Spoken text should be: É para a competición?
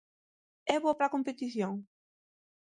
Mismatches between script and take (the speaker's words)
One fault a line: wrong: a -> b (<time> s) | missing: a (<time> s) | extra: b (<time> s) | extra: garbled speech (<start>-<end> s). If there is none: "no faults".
extra: boa (0.8 s)